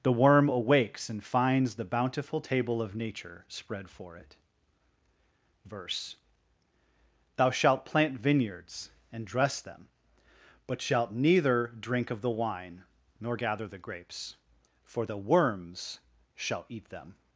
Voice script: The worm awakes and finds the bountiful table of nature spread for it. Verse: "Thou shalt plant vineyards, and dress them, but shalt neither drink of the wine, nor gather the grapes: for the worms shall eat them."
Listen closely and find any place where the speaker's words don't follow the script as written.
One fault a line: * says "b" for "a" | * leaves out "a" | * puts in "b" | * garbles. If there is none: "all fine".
all fine